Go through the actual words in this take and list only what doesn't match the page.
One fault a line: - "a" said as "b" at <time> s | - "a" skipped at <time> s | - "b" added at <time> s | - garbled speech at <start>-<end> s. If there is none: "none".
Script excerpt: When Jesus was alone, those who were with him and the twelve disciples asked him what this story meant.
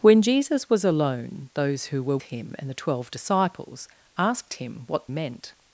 - "with" skipped at 2.2 s
- "this story" skipped at 5.1 s